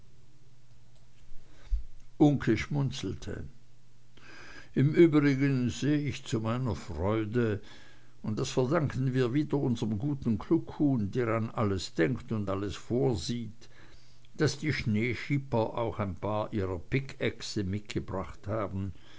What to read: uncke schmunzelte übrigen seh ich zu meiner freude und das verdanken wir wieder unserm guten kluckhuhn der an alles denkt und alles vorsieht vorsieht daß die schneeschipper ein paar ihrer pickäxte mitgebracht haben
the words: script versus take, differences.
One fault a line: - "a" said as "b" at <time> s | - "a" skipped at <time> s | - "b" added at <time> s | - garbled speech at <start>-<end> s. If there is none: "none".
- "im" added at 4.7 s
- "vorsieht" skipped at 13.7 s
- "auch" added at 15.8 s